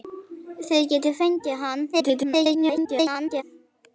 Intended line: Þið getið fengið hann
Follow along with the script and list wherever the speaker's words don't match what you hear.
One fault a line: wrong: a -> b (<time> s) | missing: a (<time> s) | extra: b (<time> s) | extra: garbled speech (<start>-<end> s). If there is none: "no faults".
extra: garbled speech (1.9-3.4 s)